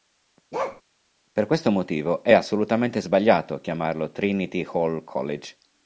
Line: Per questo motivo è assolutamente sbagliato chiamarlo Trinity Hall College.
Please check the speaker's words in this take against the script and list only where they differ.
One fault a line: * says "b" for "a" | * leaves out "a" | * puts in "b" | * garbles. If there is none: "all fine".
all fine